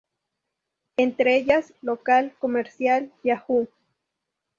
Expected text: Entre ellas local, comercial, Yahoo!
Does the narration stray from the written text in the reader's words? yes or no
no